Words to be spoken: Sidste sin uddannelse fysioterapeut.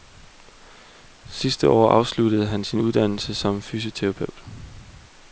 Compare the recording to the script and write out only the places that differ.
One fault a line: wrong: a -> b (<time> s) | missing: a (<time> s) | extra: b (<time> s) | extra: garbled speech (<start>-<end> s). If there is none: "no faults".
extra: år afsluttede han (1.7 s)
extra: som (3.3 s)